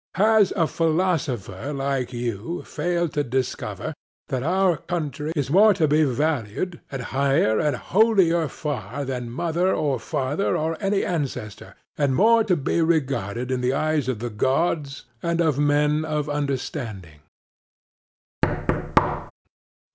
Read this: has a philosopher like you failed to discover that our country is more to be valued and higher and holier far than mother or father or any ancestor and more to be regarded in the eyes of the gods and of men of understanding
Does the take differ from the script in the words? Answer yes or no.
no